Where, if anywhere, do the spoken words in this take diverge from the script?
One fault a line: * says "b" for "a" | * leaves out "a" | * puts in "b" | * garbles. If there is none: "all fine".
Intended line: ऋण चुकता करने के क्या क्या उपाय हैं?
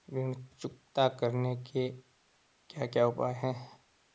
all fine